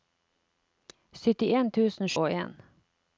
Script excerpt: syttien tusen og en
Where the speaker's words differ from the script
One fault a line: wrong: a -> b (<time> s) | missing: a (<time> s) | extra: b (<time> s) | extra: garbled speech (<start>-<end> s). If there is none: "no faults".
no faults